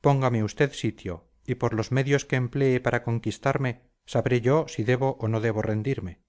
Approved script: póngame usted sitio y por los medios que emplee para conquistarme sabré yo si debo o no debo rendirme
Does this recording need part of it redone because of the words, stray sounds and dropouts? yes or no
no